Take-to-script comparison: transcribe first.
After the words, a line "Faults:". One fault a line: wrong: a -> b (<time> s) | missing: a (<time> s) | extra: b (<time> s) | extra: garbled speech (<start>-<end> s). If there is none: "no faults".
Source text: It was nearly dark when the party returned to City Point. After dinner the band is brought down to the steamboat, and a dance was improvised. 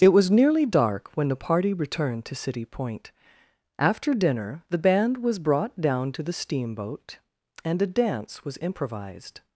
It was nearly dark when the party returned to City Point. After dinner the band was brought down to the steamboat, and a dance was improvised.
Faults:
wrong: is -> was (5.2 s)